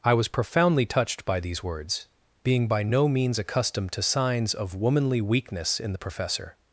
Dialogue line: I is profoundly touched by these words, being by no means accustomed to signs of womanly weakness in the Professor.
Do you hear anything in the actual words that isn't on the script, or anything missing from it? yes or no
yes